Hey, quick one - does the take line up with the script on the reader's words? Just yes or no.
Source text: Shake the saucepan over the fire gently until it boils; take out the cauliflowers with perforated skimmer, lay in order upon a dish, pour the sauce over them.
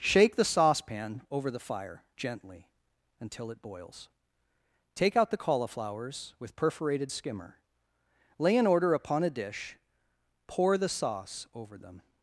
yes